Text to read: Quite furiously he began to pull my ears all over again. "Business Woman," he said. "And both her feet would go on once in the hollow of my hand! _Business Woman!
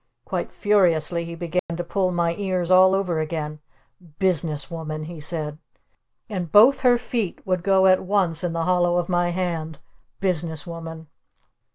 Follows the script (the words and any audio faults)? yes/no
no